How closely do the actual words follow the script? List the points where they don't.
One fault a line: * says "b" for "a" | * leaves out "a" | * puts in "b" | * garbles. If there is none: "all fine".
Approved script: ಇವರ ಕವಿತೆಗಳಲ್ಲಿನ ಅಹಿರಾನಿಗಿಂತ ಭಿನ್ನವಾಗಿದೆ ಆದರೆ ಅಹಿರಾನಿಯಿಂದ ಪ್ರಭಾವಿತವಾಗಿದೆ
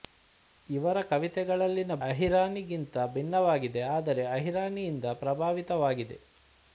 all fine